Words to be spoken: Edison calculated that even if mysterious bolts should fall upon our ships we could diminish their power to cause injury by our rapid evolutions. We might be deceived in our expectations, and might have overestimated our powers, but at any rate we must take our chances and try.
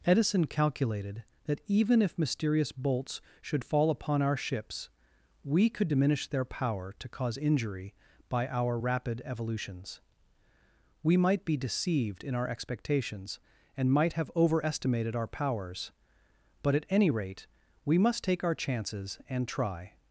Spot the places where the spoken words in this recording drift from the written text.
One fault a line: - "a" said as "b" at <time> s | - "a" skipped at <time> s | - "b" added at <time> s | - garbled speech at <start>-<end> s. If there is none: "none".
none